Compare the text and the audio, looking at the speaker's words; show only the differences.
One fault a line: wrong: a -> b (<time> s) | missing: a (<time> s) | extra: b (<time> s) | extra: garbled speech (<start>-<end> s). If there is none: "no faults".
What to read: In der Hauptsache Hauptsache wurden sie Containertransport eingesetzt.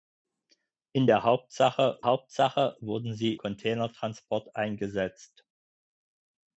no faults